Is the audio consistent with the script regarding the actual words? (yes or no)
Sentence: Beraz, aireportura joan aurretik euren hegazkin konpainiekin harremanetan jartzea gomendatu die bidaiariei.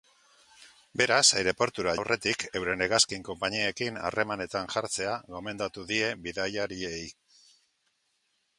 no